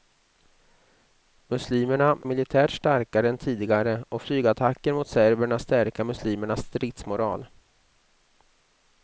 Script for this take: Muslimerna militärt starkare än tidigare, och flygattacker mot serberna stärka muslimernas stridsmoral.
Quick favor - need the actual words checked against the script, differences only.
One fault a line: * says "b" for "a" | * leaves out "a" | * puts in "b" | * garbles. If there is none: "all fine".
all fine